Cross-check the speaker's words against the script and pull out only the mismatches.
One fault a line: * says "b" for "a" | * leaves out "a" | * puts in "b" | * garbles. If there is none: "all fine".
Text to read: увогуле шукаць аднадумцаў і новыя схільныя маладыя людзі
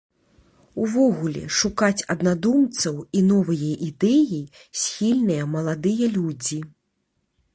* puts in "ідэі"